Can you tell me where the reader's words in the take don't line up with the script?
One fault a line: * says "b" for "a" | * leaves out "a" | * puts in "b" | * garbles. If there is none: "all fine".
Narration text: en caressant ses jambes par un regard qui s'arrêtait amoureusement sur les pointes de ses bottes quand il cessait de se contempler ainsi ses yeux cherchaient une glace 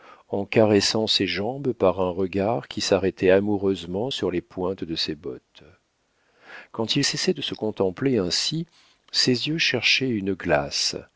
all fine